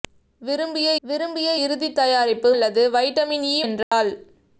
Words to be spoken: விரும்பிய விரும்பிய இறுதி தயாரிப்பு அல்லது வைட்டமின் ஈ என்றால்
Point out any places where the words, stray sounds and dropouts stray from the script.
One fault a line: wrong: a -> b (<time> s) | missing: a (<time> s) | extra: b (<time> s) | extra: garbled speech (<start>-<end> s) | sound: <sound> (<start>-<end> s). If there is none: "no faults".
sound: dropout (3.8-3.9 s)